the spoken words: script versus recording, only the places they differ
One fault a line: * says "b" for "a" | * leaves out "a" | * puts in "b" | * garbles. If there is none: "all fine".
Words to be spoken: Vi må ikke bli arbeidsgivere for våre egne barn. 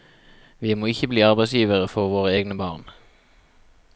all fine